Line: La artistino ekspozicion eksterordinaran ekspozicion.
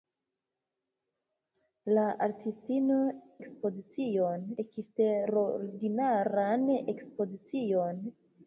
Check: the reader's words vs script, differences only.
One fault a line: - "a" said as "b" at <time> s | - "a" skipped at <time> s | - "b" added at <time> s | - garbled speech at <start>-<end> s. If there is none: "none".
none